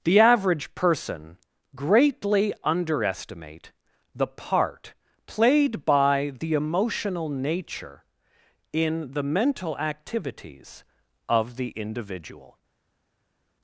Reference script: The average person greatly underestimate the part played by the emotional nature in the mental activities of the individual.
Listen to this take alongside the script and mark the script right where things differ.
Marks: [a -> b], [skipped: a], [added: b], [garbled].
The average person greatly underestimate the part played by the emotional nature in the mental activities of the individual.